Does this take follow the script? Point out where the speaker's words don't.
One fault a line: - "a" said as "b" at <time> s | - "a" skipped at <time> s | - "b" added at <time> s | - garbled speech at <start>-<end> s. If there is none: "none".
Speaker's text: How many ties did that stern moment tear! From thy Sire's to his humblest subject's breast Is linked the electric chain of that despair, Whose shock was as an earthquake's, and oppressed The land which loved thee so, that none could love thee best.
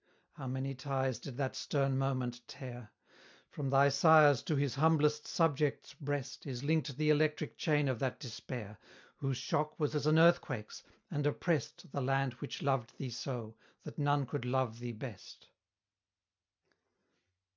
none